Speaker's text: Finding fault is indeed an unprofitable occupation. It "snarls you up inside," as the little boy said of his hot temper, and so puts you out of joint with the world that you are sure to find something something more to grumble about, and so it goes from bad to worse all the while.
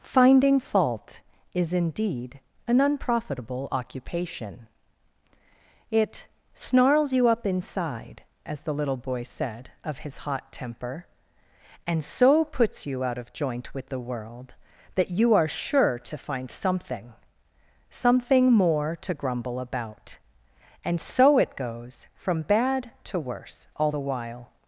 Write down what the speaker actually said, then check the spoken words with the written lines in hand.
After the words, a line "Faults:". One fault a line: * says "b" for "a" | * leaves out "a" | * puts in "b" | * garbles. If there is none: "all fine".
Finding fault is indeed an unprofitable occupation. It "snarls you up inside," as the little boy said of his hot temper, and so puts you out of joint with the world that you are sure to find something something more to grumble about, and so it goes from bad to worse all the while.
Faults:
all fine